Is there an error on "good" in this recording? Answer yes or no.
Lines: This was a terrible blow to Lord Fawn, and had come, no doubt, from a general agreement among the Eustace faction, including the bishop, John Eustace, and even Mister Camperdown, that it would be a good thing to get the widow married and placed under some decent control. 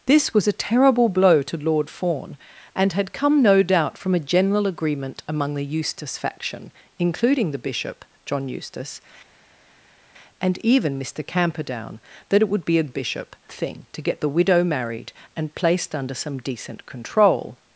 yes